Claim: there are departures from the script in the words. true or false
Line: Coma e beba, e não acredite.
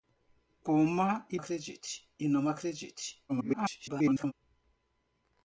true